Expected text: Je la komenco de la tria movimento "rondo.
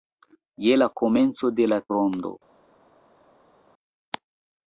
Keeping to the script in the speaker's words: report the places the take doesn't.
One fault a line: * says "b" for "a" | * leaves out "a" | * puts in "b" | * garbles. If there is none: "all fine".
* leaves out "tria movimento"